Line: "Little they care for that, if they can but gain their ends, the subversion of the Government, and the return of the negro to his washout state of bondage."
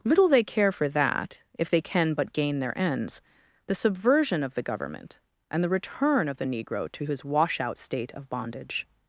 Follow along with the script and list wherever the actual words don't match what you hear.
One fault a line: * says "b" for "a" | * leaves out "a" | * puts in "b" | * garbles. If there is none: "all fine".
all fine